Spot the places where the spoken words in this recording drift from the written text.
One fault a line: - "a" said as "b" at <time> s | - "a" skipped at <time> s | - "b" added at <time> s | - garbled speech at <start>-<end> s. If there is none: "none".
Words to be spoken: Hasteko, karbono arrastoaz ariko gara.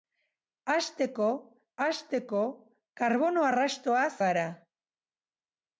- "hasteko" added at 1.9 s
- "ariko" skipped at 4.1 s